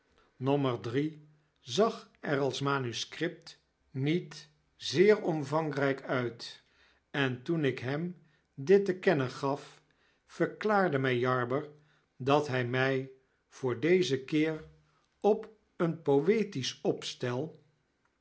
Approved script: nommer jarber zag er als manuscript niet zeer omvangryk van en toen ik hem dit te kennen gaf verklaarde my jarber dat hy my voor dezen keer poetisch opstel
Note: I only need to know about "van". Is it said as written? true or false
false